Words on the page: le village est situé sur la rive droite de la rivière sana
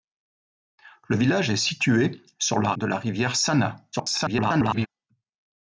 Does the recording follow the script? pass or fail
fail